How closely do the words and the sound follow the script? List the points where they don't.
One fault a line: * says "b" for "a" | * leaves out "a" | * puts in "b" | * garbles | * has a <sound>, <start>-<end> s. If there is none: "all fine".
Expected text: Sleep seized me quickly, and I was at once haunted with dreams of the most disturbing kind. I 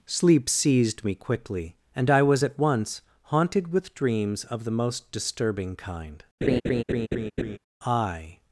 * has a laugh, 6.4-7.6 s